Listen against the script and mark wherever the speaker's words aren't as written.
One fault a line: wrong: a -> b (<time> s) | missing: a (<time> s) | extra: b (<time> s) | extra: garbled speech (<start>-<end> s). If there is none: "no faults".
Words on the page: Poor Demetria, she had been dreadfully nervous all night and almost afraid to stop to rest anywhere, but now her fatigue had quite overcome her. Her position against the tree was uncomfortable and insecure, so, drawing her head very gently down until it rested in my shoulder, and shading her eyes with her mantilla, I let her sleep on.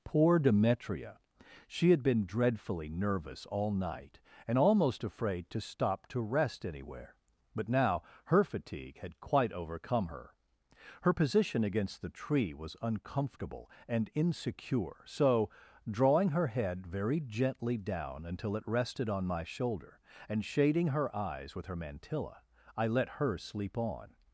wrong: in -> on (19.1 s)